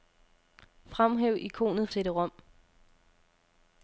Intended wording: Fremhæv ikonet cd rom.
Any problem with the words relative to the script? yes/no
no